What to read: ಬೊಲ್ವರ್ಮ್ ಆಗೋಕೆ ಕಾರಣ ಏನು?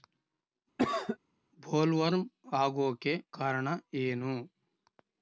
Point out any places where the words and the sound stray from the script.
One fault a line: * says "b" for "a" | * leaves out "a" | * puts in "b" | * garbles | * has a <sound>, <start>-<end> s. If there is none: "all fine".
* has a cough, 0.8-1.2 s